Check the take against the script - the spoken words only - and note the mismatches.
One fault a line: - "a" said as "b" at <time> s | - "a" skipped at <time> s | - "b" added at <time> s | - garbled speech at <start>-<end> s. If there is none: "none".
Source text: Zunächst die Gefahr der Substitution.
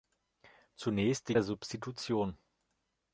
- "Gefahr" skipped at 1.4 s